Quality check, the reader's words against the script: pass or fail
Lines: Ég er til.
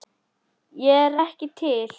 fail